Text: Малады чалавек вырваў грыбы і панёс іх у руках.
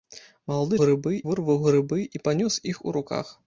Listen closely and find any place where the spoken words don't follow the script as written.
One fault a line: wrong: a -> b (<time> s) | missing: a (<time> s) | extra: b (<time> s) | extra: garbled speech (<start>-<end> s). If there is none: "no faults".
wrong: чалавек -> грыбы (0.8 s)